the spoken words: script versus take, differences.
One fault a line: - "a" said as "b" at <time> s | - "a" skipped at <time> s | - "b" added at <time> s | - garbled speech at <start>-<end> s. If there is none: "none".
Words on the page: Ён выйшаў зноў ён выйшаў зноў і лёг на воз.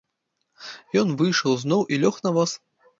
- "ён выйшаў зноў" skipped at 1.8 s